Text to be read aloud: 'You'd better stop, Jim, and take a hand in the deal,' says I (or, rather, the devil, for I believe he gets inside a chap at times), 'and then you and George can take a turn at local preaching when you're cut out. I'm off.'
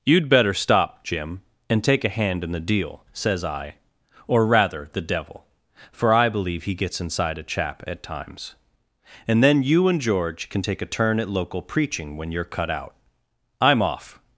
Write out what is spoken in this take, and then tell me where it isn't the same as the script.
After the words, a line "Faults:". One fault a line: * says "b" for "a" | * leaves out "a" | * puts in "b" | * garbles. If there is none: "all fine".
'You'd better stop, Jim, and take a hand in the deal,' says I (or, rather, the devil, for I believe he gets inside a chap at times), 'and then you and George can take a turn at local preaching when you're cut out. I'm off.'
Faults:
all fine